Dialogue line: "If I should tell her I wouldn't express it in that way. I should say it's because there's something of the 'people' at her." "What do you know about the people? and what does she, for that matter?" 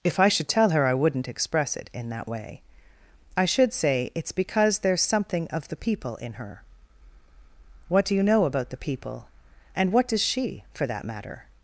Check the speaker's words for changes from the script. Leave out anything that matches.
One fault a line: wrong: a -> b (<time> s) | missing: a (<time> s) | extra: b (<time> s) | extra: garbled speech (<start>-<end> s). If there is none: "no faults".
wrong: at -> in (6.2 s)